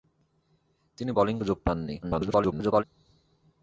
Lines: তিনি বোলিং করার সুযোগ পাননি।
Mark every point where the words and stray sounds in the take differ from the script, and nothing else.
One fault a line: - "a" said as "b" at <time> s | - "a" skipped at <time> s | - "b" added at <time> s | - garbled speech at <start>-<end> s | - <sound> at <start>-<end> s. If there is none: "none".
- "করার" skipped at 1.4 s
- garbled speech at 2.0-2.8 s